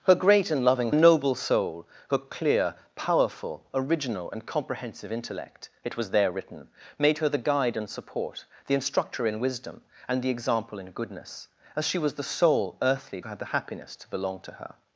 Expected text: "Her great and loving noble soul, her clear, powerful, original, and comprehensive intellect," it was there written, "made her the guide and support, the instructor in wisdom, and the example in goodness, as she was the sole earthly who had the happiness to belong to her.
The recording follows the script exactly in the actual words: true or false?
true